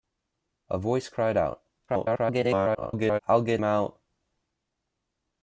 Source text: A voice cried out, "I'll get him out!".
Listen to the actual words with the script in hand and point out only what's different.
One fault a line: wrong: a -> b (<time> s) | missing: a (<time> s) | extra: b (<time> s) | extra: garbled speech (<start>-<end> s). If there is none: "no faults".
extra: garbled speech (1.9-3.2 s)
missing: him (3.6 s)